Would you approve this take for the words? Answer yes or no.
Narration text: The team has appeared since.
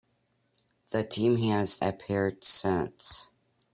yes